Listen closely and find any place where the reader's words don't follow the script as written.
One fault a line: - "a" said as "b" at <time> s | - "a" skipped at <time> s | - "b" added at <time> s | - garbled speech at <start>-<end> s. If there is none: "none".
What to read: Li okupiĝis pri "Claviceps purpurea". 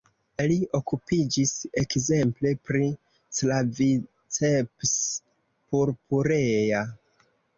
- "ekzemple" added at 1.8 s